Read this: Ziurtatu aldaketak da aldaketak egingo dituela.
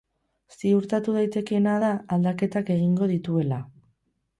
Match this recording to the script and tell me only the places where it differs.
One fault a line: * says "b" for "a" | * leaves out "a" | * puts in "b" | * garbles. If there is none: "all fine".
* says "daitekeena" for "aldaketak"